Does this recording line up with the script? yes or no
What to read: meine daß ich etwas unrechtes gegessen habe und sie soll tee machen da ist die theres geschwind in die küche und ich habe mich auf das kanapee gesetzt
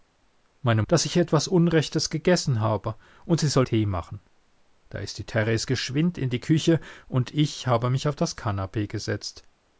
yes